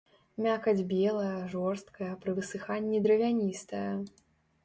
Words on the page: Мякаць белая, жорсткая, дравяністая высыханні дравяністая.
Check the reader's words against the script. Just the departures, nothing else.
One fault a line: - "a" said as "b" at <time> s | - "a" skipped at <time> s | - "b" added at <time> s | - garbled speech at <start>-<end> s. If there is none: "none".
- "дравяністая" said as "пры" at 2.2 s